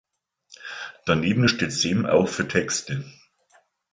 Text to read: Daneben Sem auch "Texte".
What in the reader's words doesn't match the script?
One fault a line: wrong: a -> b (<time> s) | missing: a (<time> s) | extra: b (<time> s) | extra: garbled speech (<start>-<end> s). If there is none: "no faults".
extra: steht (1.4 s)
extra: für (2.3 s)